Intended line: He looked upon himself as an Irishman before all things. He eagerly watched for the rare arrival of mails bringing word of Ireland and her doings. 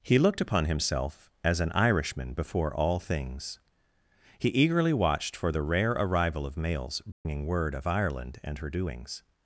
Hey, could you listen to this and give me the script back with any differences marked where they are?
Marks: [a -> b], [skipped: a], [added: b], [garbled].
He looked upon himself as an Irishman before all things. He eagerly watched for the rare arrival of mails bringing word of Ireland and her doings.